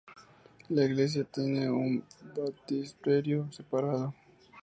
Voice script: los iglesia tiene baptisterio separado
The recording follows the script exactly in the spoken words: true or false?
false